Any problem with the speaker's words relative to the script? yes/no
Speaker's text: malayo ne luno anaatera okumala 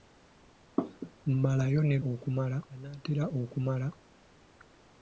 yes